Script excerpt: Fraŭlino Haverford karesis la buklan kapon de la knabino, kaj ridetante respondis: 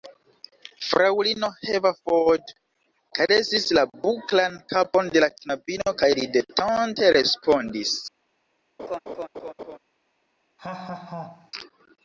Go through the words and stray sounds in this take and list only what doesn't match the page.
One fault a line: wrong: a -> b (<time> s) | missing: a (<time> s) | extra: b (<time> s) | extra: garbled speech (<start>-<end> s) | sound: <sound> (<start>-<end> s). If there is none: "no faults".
sound: laugh (8.8-9.8 s)
sound: laugh (10.6-11.5 s)